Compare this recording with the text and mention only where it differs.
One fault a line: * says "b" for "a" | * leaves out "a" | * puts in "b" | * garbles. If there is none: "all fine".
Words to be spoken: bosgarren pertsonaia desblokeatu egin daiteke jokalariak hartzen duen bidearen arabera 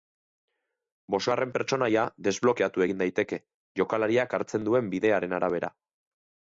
all fine